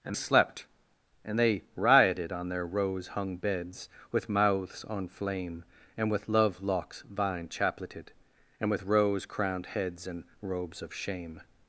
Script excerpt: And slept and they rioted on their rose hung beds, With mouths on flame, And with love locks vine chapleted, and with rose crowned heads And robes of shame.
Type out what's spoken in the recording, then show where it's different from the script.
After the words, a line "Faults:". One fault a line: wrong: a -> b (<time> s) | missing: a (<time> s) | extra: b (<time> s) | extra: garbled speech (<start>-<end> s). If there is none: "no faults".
And slept and they rioted on their rose hung beds, With mouths on flame, And with love locks vine chapleted, and with rose crowned heads And robes of shame.
Faults:
no faults